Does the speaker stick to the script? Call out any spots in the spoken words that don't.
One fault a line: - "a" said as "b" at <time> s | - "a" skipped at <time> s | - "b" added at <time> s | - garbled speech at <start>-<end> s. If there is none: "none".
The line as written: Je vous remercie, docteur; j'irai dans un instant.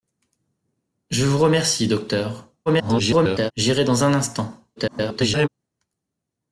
- garbled speech at 2.7-3.5 s
- garbled speech at 4.8-5.5 s